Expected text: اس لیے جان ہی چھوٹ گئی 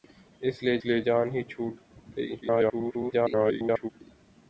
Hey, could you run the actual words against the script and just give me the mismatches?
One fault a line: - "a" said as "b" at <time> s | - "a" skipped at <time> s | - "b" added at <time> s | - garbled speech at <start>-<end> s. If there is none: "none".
- "لیے" added at 0.9 s
- garbled speech at 2.4-3.9 s